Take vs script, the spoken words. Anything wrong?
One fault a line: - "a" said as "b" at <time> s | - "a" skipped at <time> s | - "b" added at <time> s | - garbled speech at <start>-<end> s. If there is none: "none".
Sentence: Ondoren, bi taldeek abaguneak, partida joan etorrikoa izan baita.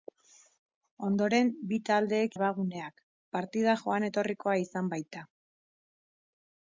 none